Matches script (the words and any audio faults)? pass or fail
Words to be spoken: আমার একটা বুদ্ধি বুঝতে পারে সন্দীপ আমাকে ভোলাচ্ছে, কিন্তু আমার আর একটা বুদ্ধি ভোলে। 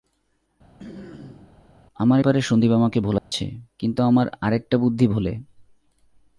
fail